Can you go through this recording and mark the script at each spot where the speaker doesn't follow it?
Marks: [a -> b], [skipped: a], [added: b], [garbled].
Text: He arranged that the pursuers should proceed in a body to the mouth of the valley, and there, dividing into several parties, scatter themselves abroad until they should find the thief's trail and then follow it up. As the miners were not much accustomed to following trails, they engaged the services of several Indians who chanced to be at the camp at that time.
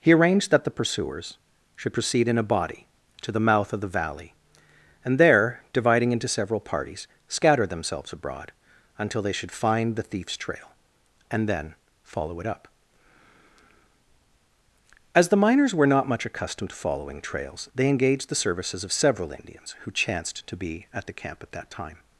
He arranged that the pursuers should proceed in a body to the mouth of the valley, and there, dividing into several parties, scatter themselves abroad until they should find the thief's trail and then follow it up. As the miners were not much accustomed to following trails, they engaged the services of several Indians who chanced to be at the camp at that time.